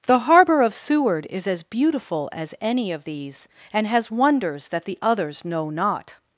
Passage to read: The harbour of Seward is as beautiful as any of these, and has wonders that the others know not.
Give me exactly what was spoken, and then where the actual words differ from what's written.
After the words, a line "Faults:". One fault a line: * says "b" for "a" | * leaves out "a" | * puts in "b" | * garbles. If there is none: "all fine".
The harbour of Seward is as beautiful as any of these, and has wonders that the others know not.
Faults:
all fine